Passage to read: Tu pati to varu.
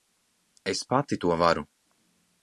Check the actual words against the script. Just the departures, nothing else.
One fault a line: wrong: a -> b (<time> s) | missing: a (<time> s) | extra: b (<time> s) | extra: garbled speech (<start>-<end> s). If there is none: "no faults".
wrong: Tu -> Es (0.7 s)